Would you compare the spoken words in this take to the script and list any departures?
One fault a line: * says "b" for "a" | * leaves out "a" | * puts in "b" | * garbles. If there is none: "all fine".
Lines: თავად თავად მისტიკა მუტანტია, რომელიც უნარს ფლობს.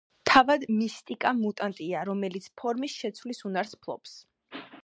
* leaves out "თავად"
* puts in "ფორმის შეცვლის"